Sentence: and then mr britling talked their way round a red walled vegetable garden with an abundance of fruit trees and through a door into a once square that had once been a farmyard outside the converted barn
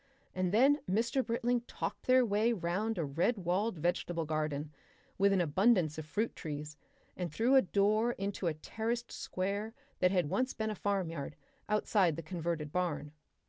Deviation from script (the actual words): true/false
true